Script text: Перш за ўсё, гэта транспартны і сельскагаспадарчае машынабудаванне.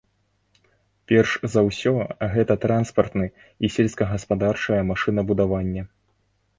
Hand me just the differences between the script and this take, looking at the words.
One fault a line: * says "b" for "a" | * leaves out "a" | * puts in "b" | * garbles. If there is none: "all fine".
all fine